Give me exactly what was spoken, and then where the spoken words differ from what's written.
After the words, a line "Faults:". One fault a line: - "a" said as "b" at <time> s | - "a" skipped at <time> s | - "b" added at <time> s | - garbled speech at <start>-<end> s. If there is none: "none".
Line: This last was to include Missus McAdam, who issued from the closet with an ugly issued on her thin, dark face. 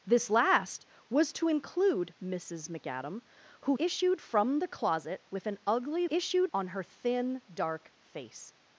This last was to include Missus McAdam, who issued from the closet with an ugly issued on her thin, dark face.
Faults:
none